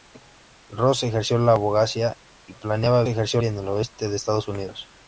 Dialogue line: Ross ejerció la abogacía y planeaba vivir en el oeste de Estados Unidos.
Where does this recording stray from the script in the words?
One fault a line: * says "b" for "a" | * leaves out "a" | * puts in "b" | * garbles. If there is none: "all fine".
* says "ejerció" for "vivir"